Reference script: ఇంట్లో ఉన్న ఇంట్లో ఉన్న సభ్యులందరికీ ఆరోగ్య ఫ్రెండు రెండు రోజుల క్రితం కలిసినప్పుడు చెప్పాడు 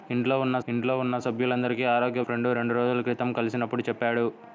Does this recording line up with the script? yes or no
yes